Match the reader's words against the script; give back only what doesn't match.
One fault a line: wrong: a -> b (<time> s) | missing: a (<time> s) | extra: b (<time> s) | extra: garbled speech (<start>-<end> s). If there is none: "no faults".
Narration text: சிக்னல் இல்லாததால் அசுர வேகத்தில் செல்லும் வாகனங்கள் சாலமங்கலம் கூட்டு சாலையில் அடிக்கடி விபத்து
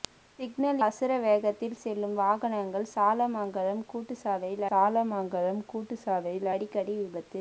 missing: இல்லாததால் (0.8 s)
extra: சாலமங்கலம் கூட்டு சாலையில் (4.7 s)